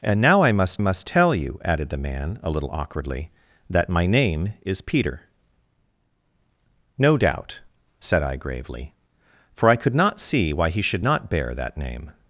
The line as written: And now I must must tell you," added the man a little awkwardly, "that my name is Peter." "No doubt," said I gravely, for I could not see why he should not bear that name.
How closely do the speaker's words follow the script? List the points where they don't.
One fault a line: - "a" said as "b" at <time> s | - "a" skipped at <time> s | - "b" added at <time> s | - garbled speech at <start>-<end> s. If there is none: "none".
none